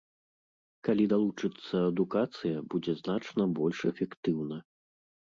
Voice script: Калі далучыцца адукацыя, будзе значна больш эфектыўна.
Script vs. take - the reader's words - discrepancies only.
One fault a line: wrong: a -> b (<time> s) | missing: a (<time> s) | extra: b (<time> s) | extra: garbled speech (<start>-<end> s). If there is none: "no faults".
no faults